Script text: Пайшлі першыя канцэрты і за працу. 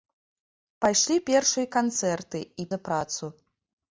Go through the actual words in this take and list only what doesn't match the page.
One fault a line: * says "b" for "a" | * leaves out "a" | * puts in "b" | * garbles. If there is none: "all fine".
all fine